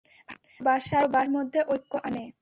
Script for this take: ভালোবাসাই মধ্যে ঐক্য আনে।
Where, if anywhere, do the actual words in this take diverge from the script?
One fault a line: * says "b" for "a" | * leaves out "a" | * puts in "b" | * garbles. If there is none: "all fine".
all fine